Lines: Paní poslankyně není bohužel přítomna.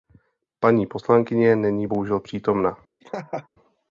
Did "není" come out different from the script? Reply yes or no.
no